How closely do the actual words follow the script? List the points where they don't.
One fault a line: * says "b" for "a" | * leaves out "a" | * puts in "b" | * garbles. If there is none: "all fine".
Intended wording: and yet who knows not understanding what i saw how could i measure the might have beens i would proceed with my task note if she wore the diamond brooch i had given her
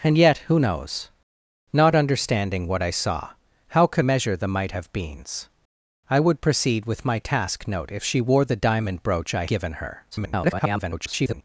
* leaves out "i"
* leaves out "had"
* garbles